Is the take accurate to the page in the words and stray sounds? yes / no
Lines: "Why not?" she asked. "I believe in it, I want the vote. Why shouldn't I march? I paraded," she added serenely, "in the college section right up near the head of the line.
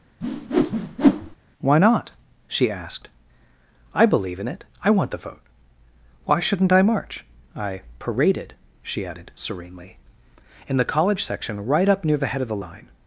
no